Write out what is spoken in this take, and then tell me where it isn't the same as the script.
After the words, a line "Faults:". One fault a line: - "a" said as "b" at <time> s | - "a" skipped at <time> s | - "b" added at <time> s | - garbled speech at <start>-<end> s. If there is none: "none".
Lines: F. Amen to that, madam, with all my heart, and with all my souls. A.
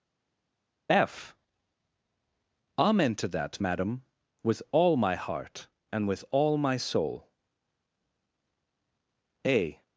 F. Amen to that, madam, with all my heart, and with all my soul. A.
Faults:
- "souls" said as "soul" at 6.8 s